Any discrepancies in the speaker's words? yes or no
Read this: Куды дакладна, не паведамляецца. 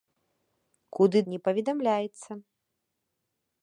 yes